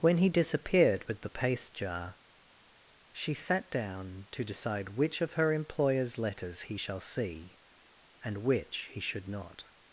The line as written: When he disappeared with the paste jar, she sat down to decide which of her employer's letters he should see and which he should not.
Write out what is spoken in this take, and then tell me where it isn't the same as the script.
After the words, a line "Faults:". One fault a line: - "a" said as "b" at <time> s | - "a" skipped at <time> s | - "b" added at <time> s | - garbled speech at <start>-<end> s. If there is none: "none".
When he disappeared with the paste jar, she sat down to decide which of her employer's letters he shall see and which he should not.
Faults:
- "should" said as "shall" at 6.7 s